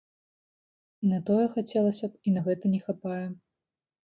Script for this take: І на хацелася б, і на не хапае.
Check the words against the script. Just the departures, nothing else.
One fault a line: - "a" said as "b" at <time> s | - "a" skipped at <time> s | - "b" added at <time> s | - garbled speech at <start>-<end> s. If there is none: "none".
- "тое" added at 1.3 s
- "гэта" added at 2.5 s